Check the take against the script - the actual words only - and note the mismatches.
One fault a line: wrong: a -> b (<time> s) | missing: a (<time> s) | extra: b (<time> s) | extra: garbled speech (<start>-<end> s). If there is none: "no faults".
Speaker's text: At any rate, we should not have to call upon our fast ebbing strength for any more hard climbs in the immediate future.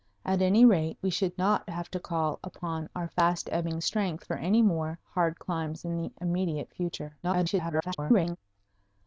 extra: garbled speech (7.2-8.4 s)